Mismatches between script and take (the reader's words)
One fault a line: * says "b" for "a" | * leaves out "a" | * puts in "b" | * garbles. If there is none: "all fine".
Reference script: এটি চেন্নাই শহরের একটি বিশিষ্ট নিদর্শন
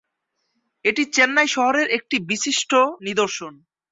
all fine